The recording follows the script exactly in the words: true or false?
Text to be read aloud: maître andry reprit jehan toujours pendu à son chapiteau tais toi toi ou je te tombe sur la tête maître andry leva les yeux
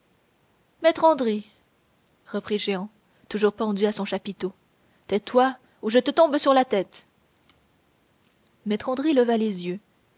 false